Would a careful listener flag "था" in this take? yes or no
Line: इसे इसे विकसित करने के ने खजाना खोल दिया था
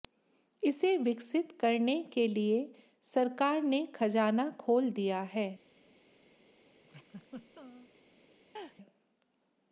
yes